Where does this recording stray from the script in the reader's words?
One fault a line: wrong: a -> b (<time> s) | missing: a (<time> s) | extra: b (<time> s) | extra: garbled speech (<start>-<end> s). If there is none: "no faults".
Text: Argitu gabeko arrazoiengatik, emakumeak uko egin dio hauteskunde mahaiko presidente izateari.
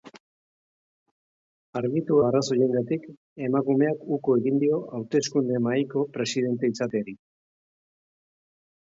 missing: gabeko (2.2 s)